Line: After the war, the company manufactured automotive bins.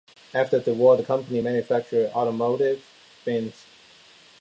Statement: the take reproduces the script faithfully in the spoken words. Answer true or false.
true